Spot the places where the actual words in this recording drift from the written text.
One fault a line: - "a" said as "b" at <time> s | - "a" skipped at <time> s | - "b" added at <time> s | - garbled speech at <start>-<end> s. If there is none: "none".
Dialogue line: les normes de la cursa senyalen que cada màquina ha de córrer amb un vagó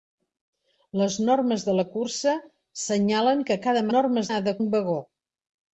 - "màquina" said as "normes" at 3.9 s
- "córrer amb" skipped at 4.6 s